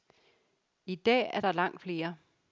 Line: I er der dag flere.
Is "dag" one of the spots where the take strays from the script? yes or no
yes